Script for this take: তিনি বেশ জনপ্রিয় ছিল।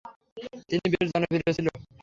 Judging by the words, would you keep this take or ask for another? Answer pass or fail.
pass